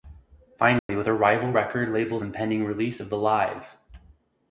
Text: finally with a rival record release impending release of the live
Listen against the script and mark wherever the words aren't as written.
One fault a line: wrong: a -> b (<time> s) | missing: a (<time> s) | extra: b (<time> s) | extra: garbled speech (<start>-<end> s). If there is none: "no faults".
wrong: release -> label's (1.9 s)